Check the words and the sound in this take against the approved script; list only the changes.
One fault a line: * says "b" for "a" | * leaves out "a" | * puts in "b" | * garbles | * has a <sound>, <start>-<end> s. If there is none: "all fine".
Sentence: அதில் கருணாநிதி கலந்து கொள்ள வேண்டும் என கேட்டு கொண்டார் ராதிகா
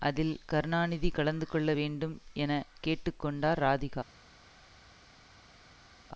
all fine